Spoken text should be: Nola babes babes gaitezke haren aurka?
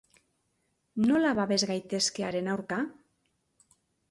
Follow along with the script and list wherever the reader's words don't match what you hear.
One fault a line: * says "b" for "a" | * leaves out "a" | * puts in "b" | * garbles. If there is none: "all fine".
* leaves out "babes"